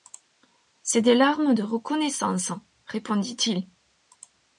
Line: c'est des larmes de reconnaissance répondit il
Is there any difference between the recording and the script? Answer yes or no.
no